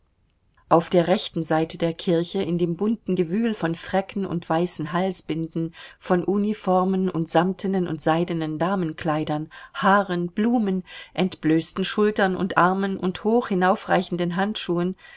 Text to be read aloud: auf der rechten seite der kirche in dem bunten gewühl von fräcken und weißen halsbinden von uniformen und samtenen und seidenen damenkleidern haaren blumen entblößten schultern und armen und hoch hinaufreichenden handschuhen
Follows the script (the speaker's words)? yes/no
yes